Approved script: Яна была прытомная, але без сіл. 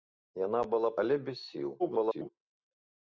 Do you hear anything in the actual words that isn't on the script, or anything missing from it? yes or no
yes